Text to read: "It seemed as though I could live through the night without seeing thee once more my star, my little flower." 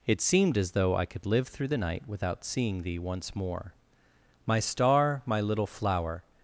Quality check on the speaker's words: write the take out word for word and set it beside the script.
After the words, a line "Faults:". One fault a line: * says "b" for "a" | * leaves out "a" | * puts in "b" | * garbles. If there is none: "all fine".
"It seemed as though I could live through the night without seeing thee once more my star, my little flower."
Faults:
all fine